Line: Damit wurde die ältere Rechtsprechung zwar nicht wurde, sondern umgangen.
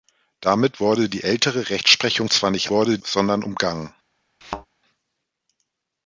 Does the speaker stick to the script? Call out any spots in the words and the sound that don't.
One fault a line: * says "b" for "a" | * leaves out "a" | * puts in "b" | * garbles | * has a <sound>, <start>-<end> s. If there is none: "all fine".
* has a thud, 4.4-4.7 s